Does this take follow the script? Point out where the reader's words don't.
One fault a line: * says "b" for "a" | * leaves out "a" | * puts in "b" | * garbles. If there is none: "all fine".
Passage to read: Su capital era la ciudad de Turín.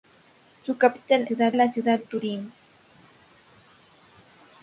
* says "ciudad" for "era"
* leaves out "de"